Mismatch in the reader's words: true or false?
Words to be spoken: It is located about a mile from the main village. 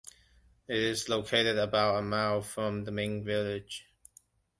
false